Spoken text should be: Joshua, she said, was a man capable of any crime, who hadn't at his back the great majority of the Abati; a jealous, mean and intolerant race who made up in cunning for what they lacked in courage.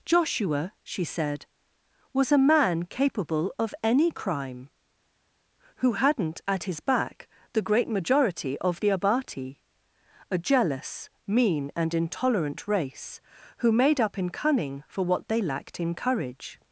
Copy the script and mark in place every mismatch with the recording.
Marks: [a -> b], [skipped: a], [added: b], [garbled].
Joshua, she said, was a man capable of any crime, who hadn't at his back the great majority of the Abati; a jealous, mean and intolerant race who made up in cunning for what they lacked in courage.